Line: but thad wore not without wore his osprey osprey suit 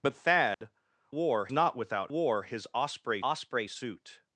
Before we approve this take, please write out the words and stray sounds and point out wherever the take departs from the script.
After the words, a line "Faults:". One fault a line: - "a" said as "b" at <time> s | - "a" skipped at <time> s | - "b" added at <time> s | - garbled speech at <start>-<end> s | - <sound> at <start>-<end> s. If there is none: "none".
but thad wore not without wore his osprey osprey suit
Faults:
- dropout at 0.5-0.6 s